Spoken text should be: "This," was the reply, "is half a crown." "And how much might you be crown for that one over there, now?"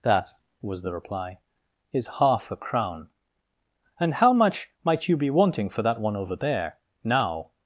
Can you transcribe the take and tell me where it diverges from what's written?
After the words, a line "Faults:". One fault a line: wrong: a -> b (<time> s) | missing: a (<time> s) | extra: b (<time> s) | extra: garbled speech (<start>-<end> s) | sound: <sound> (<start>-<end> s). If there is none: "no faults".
"That," was the reply, "is half a crown." "And how much might you be wanting for that one over there, now?"
Faults:
wrong: This -> That (0.0 s)
wrong: crown -> wanting (5.3 s)